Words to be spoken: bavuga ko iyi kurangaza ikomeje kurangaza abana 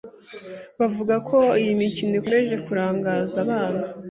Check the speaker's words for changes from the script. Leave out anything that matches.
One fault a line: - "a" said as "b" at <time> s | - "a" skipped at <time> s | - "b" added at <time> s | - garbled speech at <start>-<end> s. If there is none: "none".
- "kurangaza" said as "mikino" at 1.8 s